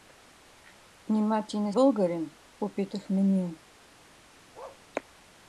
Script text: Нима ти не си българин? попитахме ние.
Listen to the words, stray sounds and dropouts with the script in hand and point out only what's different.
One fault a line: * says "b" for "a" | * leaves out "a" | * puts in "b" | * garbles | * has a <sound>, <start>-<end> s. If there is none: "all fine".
* leaves out "си"
* has a bark, 4.5-4.8 s